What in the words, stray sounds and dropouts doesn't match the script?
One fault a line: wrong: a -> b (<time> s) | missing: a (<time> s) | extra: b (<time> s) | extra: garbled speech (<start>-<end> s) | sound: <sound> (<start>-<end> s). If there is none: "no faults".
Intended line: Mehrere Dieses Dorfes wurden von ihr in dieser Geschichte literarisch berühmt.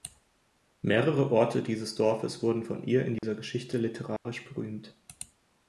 extra: Orte (1.3 s)
sound: dropout (3.2-3.2 s)
sound: dropout (4.2-4.3 s)